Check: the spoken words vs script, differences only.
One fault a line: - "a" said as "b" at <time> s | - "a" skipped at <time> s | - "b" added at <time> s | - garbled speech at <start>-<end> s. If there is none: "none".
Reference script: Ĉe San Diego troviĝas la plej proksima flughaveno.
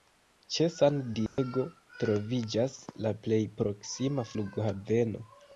none